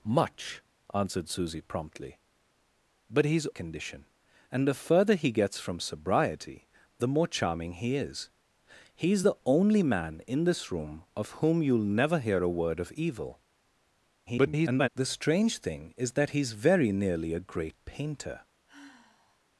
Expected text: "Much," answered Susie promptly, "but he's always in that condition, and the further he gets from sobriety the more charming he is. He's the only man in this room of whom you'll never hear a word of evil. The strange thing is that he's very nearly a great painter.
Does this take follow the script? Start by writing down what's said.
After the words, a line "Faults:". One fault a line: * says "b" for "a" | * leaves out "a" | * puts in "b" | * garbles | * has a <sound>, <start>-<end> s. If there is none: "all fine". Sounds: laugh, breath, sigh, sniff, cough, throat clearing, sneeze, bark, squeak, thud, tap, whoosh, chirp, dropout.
"Much," answered Susie promptly, "but he's condition, and the further he gets from sobriety the more charming he is. He's the only man in this room of whom you'll never hear a word of evil. [garbled] The strange thing is that he's very nearly a great painter.
Faults:
* leaves out "always in that"
* garbles
* has a sigh, 18.7-19.5 s